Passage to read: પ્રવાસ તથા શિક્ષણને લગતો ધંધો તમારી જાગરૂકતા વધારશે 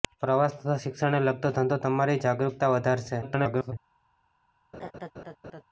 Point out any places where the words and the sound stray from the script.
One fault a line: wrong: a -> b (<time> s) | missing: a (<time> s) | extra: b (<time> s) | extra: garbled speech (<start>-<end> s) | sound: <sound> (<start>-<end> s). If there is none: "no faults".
extra: garbled speech (3.2-3.7 s)
sound: laugh (4.7-5.6 s)